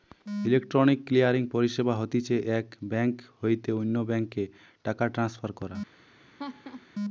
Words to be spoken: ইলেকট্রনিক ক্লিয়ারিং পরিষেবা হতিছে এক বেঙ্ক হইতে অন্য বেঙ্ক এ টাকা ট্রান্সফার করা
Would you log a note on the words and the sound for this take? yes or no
yes